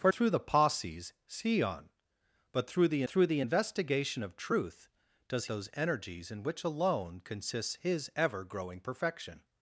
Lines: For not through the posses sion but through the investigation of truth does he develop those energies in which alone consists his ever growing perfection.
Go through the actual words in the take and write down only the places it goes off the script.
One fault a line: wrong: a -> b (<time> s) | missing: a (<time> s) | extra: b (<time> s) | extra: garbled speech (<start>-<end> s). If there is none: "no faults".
missing: not (0.1 s)
extra: through the (3.1 s)
missing: he develop (5.5 s)